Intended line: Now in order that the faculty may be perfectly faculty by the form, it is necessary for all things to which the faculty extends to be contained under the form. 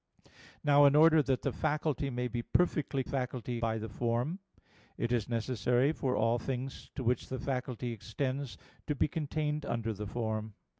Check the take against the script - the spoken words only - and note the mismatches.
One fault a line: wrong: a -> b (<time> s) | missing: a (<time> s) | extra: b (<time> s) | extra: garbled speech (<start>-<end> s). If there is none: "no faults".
no faults